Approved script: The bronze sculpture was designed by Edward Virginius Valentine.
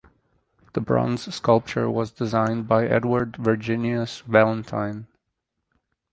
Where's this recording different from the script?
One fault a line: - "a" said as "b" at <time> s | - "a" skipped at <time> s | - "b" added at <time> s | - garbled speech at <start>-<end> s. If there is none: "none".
none